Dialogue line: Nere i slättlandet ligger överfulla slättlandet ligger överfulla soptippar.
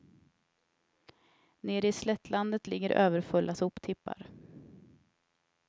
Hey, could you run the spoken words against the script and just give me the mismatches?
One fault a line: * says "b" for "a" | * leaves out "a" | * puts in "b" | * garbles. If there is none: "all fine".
* leaves out "slättlandet ligger överfulla"